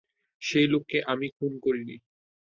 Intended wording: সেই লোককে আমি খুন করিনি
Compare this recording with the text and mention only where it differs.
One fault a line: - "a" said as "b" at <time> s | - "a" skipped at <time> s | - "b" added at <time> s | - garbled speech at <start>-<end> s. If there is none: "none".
none